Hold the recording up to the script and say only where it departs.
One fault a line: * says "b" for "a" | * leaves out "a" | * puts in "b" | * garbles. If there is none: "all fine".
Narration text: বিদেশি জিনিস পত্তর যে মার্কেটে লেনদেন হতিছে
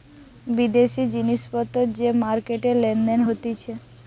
all fine